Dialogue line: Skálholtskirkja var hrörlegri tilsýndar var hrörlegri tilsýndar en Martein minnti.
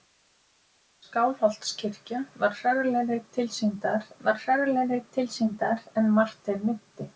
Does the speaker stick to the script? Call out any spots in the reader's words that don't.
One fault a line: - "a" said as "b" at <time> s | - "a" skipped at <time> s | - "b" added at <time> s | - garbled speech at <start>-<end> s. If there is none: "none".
none